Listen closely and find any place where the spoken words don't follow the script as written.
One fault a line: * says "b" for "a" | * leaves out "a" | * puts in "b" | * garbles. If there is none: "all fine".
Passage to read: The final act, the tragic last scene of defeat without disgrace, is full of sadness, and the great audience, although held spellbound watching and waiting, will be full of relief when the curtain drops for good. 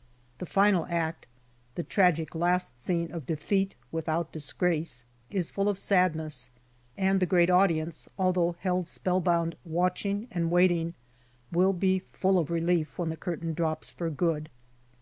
all fine